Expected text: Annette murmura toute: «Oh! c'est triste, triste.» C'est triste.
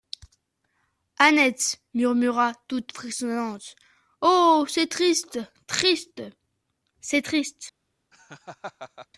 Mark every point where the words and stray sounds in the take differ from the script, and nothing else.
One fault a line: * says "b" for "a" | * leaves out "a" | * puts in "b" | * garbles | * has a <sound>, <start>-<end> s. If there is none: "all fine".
* puts in "frissonnante"
* has a laugh, 8.1-9.1 s